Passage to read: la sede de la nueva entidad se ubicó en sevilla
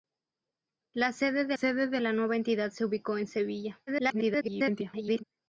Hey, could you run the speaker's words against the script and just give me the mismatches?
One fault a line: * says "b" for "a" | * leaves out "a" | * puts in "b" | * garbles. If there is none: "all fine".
* puts in "sede de"
* garbles